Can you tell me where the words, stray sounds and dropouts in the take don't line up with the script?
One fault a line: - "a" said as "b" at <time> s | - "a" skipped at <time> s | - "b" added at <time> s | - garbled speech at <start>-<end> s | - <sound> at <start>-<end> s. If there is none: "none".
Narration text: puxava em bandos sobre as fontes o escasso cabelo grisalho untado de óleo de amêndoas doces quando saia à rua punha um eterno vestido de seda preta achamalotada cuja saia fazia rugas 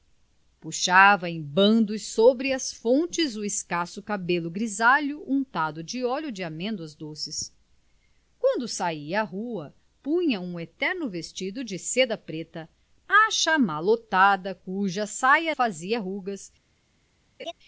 - laugh at 17.4-17.5 s